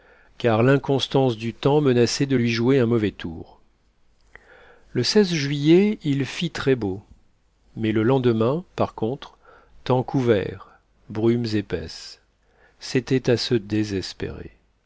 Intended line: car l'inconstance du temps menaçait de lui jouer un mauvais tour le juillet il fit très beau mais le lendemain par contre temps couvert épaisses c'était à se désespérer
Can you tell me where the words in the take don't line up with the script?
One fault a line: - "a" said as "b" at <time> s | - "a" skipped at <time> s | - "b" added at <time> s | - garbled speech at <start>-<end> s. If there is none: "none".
- "brumes" added at 11.1 s